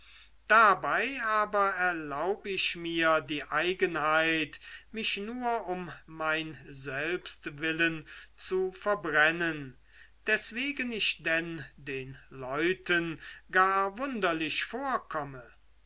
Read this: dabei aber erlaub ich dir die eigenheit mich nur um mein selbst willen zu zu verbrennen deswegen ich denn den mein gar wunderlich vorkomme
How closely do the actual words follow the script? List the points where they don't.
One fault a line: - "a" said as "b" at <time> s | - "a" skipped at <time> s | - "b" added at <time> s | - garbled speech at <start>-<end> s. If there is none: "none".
- "dir" said as "mir" at 2.7 s
- "zu" skipped at 8.7 s
- "mein" said as "leuten" at 12.3 s